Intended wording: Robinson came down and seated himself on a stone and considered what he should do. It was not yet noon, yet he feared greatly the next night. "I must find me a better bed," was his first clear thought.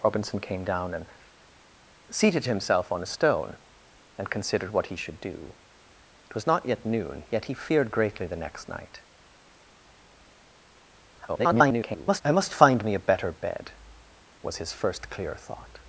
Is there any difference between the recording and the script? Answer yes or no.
yes